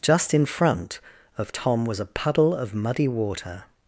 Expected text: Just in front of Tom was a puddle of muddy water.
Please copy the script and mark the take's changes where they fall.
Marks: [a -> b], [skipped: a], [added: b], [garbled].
Just in front of Tom was a puddle of muddy water.